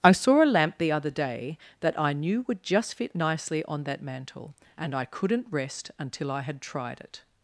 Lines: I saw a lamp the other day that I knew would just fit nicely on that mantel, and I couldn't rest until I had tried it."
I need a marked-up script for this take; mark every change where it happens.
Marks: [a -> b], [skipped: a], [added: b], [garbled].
I saw a lamp the other day that I knew would just fit nicely on that mantel, and I couldn't rest until I had tried it."